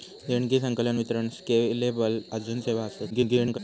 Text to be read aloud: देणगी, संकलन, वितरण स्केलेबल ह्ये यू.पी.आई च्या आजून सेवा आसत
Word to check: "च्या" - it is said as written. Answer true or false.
false